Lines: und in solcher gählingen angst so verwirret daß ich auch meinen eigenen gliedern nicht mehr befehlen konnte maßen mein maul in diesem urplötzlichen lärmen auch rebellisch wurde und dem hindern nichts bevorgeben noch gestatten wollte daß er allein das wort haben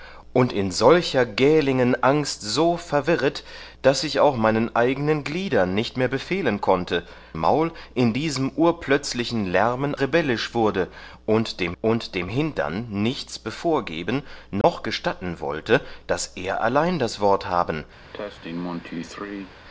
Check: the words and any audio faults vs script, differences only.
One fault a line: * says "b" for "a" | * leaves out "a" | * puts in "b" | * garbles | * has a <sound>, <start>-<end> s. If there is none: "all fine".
* leaves out "maßen mein"
* leaves out "auch"
* puts in "und dem"
* has a dropout, 14.6-14.6 s
* has a cough, 18.1-19.5 s